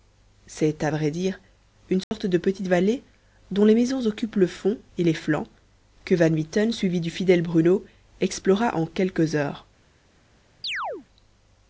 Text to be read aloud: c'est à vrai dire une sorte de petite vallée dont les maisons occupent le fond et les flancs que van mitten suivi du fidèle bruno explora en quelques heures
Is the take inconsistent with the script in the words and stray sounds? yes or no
yes